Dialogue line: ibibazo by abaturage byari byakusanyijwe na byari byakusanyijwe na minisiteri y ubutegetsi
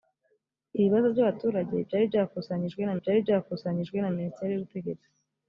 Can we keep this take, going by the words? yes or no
yes